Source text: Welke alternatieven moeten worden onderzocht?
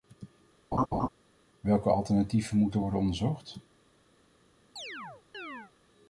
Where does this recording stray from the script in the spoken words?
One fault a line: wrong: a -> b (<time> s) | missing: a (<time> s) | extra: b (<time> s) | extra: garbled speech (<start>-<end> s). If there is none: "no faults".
no faults